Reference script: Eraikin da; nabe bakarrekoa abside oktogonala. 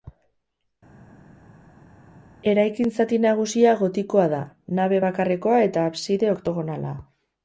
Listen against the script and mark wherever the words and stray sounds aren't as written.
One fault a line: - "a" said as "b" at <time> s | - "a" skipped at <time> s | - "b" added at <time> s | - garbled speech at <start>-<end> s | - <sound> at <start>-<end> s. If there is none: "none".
- "zati nagusia gotikoa" added at 3.0 s
- "eta" added at 5.7 s